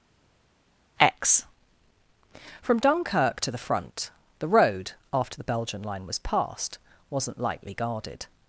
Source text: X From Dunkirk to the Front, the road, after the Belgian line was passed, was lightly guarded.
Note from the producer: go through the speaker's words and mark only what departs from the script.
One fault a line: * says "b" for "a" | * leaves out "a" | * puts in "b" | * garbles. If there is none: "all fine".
* says "wasn't" for "was"